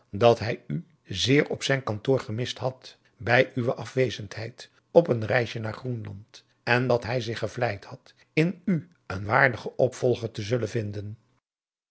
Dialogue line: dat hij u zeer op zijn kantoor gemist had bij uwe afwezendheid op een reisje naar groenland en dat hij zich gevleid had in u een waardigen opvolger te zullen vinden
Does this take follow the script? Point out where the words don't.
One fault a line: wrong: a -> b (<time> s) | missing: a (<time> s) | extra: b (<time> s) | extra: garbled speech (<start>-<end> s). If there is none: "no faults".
no faults